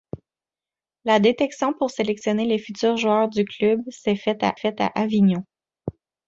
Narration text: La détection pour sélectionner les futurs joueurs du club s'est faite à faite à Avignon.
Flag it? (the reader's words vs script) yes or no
no